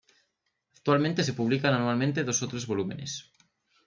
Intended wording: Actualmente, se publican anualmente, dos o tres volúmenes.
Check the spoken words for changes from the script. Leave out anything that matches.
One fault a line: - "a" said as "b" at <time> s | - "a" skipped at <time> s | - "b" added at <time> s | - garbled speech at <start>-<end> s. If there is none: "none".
none